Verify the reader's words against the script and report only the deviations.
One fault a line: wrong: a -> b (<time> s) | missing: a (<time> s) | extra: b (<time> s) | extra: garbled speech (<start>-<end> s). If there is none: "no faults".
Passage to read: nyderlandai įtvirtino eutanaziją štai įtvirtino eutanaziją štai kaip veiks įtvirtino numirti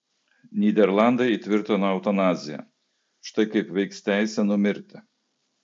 missing: įtvirtino eutanaziją štai (3.5 s)
wrong: įtvirtino -> teisė (4.1 s)